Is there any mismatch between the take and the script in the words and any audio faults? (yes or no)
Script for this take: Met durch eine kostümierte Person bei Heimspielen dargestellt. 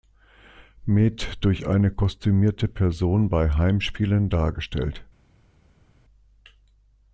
no